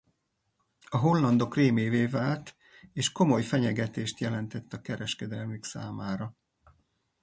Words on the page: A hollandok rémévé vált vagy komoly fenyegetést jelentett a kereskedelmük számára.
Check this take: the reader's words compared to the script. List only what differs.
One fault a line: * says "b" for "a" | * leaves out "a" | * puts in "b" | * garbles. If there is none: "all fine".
* says "és" for "vagy"